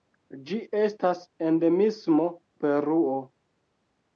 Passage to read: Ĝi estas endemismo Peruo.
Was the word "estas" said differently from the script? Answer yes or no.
no